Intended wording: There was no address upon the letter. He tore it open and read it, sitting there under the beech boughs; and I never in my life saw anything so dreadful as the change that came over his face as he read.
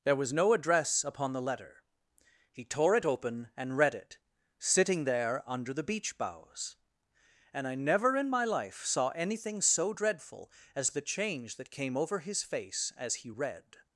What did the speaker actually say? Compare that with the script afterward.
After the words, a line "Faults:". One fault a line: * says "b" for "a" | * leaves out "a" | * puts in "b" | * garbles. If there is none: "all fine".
There was no address upon the letter. He tore it open and read it, sitting there under the beech boughs; and I never in my life saw anything so dreadful as the change that came over his face as he read.
Faults:
all fine